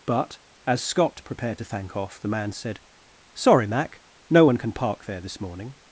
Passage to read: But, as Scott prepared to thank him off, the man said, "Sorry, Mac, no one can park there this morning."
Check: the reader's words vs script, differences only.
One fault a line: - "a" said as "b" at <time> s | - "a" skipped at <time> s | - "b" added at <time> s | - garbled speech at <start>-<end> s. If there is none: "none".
- "him" skipped at 2.0 s